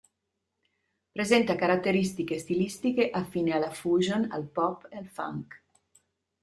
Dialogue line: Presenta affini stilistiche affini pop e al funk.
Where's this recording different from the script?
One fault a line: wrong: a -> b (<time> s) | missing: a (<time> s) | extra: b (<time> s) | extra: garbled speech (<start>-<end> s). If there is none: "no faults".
wrong: affini -> caratteristiche (1.5 s)
extra: alla fusion al (3.5 s)